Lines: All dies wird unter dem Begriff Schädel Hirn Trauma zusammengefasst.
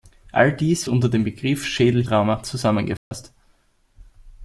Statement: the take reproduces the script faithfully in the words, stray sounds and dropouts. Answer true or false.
false